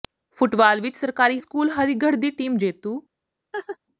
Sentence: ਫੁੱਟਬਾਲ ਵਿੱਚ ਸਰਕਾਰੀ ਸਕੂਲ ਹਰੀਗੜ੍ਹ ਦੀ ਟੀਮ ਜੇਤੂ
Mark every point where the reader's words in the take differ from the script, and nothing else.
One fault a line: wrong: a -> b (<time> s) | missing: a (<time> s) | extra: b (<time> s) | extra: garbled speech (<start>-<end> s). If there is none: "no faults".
no faults